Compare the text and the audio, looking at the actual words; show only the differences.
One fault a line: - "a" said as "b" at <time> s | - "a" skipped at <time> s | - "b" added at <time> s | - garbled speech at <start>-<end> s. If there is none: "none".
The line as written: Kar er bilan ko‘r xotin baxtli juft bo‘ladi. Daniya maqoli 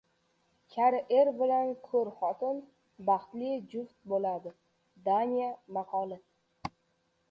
none